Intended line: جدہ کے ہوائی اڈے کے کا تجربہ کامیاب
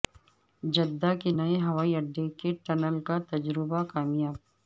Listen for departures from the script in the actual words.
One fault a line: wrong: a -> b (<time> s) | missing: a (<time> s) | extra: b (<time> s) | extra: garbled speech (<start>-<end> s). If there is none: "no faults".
extra: نئے (1.4 s)
extra: ٹنل (2.6 s)